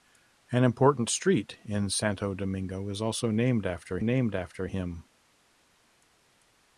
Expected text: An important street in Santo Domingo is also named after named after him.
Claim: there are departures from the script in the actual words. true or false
false